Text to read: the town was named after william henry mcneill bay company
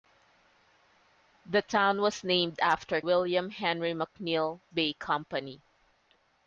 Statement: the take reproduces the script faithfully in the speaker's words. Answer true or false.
true